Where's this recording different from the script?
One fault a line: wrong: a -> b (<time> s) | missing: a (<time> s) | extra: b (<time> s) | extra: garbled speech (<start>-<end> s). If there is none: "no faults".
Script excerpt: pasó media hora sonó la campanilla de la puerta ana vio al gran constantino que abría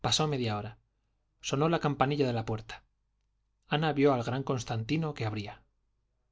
no faults